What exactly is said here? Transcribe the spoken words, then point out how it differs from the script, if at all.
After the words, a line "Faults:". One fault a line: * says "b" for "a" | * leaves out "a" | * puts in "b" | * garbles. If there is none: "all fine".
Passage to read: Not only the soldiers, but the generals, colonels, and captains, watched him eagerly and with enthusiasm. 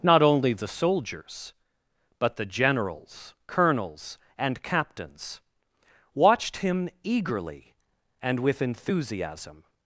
Not only the soldiers, but the generals, colonels, and captains, watched him eagerly and with enthusiasm.
Faults:
all fine